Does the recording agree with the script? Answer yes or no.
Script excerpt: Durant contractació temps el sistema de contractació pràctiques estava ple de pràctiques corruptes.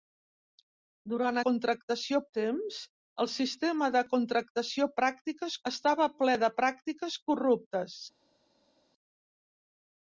yes